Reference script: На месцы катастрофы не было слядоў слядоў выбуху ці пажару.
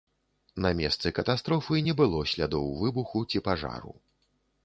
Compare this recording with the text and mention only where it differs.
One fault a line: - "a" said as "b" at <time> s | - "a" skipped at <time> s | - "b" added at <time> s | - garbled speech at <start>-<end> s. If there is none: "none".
- "слядоў" skipped at 2.7 s